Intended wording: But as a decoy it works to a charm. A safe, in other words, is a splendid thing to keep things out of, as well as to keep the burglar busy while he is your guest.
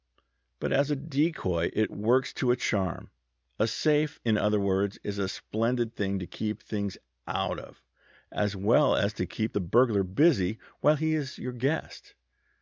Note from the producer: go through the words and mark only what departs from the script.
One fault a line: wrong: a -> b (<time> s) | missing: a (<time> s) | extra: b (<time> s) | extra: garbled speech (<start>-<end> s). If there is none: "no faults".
no faults